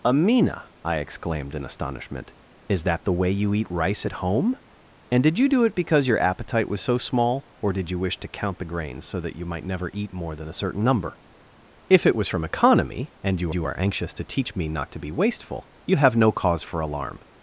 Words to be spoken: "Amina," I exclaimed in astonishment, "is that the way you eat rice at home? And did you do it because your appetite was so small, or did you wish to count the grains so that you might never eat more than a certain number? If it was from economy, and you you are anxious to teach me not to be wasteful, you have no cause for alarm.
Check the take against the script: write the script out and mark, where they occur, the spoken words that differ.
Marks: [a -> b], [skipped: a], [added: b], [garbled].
"Amina," I exclaimed in astonishment, "is that the way you eat rice at home? And did you do it because your appetite was so small, or did you wish to count the grains so that you might never eat more than a certain number? If it was from economy, and you you are anxious to teach me not to be wasteful, you have no cause for alarm.